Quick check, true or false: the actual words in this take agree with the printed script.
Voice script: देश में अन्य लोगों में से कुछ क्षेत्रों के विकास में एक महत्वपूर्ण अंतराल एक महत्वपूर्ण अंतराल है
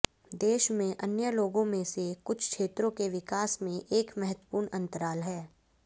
false